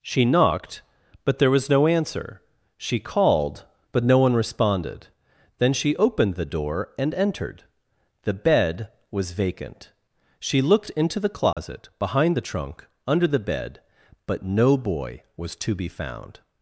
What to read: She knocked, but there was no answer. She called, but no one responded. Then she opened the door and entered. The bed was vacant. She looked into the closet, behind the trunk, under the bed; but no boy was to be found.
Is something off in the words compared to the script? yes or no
no